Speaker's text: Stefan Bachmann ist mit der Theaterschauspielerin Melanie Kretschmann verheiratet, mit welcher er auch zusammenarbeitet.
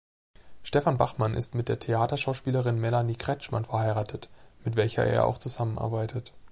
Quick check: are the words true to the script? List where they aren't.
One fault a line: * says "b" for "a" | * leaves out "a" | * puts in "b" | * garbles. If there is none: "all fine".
all fine